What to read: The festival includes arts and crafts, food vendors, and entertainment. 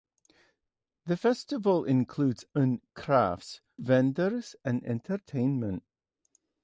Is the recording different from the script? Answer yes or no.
yes